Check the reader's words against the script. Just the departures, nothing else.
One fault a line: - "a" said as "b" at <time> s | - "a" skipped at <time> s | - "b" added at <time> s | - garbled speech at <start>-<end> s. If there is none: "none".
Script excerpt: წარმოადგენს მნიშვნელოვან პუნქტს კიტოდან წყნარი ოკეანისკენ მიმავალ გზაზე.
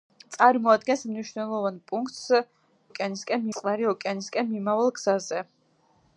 - "კიტოდან" said as "ოკეანისკენ" at 2.9 s